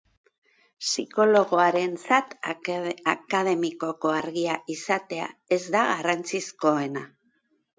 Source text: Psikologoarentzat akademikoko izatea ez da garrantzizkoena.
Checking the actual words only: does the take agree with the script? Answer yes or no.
no